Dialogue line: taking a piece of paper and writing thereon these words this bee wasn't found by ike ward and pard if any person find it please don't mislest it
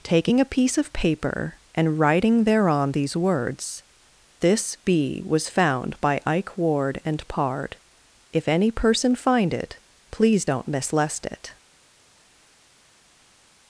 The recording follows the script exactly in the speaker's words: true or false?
false